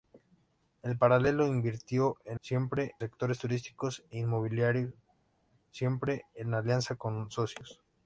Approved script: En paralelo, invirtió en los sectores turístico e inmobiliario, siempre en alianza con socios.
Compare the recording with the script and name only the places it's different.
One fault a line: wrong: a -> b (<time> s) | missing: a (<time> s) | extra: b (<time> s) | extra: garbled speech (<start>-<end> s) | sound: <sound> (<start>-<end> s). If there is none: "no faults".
wrong: los -> siempre (2.4 s)